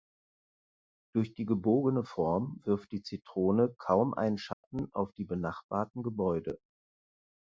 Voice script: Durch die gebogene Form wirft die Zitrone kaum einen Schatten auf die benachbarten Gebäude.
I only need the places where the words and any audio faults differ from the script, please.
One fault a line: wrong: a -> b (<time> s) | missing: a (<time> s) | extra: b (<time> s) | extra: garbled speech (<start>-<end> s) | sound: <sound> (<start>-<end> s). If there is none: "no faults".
sound: dropout (4.5-4.6 s)